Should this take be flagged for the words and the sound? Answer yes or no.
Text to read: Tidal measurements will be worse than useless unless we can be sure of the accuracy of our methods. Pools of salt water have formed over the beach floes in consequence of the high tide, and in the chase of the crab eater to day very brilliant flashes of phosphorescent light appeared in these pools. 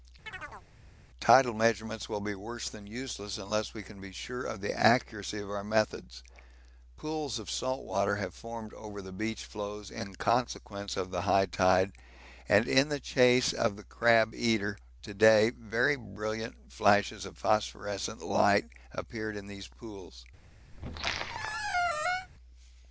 yes